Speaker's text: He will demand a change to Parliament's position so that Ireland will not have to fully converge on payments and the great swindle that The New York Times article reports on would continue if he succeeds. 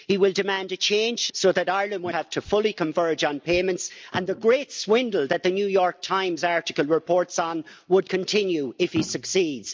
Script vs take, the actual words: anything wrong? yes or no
yes